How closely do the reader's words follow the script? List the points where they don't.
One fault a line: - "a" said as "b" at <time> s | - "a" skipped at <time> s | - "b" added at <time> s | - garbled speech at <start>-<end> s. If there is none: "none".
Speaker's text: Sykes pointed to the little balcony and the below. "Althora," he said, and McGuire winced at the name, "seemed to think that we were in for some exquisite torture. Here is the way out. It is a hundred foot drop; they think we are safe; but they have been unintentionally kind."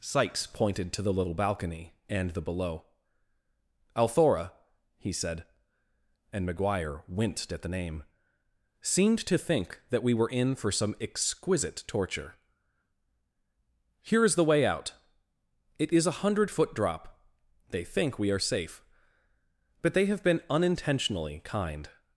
none